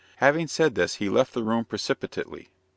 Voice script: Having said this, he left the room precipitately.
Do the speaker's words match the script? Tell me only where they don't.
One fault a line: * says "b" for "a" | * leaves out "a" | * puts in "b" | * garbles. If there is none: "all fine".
all fine